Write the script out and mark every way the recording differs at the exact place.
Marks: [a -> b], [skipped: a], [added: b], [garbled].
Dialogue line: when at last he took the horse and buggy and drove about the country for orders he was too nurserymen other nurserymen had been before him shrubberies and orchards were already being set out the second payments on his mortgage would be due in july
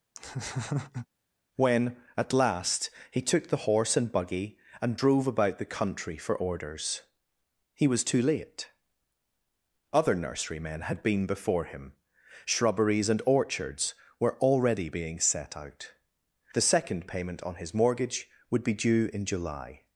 when at last he took the horse and buggy and drove about the country for orders he was too [nurserymen -> late] other nurserymen had been before him shrubberies and orchards were already being set out the second [payments -> payment] on his mortgage would be due in july